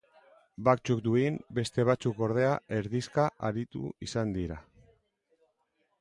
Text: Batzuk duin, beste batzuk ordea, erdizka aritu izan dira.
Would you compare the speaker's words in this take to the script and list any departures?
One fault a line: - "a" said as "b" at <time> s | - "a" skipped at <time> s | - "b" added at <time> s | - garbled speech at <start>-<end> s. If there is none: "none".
none